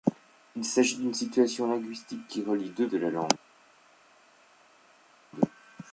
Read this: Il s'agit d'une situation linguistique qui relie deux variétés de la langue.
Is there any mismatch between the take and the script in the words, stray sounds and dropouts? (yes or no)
yes